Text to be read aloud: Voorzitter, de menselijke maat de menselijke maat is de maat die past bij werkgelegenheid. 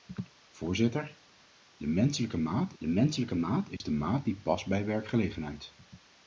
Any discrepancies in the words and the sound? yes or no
yes